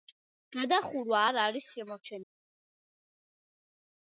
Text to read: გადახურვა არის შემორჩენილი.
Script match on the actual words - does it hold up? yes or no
no